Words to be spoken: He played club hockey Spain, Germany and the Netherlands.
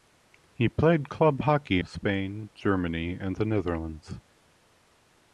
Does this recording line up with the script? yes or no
yes